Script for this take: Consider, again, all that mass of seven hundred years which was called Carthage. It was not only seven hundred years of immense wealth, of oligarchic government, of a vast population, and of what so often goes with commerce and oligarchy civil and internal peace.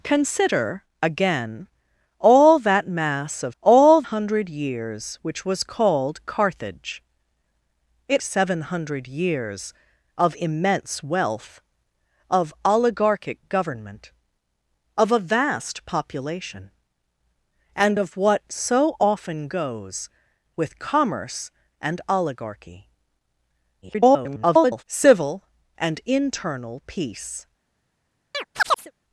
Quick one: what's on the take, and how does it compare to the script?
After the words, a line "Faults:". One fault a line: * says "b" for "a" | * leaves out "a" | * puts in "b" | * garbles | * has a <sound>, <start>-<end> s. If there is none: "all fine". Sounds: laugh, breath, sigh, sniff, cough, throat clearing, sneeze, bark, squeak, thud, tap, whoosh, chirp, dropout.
Consider, again, all that mass of all hundred years which was called Carthage. It seven hundred years of immense wealth, of oligarchic government, of a vast population, and of what so often goes with commerce and oligarchy [garbled] civil and internal peace.
Faults:
* says "all" for "seven"
* leaves out "was not only"
* garbles
* has a chirp, 28.3-28.9 s